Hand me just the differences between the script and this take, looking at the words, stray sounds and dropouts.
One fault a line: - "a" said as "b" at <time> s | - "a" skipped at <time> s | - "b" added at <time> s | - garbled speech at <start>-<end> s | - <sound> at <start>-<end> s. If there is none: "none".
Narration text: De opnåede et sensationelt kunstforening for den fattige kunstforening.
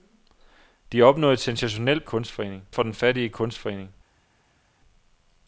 none